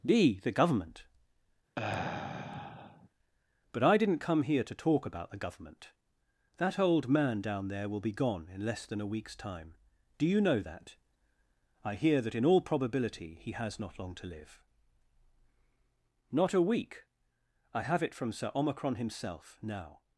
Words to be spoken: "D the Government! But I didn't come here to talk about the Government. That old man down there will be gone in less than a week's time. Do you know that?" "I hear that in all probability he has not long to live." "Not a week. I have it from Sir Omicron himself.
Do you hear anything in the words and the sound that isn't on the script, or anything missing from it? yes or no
yes